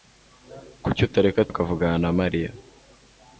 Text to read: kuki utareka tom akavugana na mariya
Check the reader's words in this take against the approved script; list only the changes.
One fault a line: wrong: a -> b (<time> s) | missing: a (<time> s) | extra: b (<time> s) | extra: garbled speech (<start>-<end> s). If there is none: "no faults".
missing: tom (1.5 s)